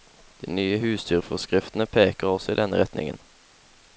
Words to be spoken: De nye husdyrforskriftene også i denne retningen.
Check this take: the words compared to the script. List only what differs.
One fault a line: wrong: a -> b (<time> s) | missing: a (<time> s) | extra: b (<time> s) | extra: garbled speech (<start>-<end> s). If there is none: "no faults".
extra: peker (2.0 s)